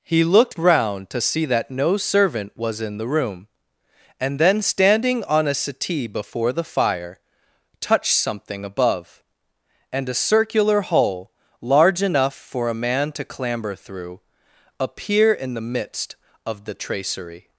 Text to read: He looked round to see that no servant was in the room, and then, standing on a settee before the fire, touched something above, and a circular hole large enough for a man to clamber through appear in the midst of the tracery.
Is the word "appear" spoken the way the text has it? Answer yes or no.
yes